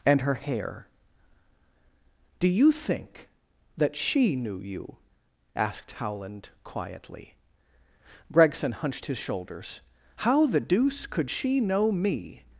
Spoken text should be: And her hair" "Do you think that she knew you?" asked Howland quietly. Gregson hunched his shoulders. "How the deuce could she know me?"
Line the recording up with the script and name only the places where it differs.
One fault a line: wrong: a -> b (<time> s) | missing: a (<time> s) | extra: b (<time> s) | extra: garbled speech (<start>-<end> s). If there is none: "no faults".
no faults